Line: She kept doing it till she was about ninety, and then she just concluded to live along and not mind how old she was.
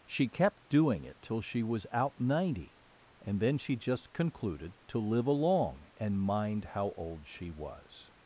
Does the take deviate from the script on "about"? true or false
true